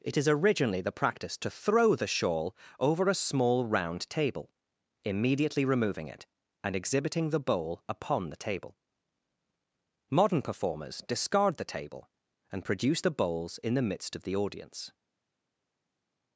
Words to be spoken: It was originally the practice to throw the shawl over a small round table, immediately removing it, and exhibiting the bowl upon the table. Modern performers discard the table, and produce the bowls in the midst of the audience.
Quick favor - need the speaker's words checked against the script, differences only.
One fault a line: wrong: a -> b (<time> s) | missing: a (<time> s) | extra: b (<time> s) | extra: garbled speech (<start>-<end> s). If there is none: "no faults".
wrong: was -> is (0.2 s)